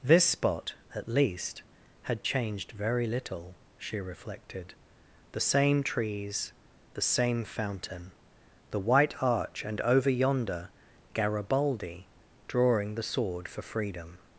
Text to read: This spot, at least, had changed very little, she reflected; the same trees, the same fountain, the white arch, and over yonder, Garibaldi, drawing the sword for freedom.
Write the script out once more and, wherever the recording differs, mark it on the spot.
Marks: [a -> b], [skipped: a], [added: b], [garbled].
This spot, at least, had changed very little, she reflected; the same trees, the same fountain, the white arch, and over yonder, Garibaldi, drawing the sword for freedom.